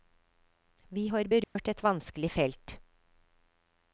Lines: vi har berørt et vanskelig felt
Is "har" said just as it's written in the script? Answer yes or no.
yes